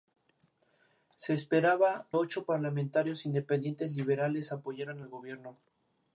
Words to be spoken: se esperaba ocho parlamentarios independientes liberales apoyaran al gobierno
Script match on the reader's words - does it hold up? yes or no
yes